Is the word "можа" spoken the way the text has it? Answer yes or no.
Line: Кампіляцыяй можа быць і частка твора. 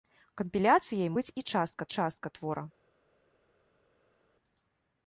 no